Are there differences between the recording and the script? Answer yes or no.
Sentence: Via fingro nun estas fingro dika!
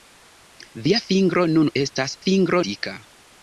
no